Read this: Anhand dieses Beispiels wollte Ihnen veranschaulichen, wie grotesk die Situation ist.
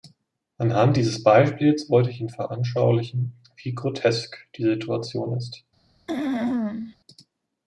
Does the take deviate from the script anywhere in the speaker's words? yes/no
yes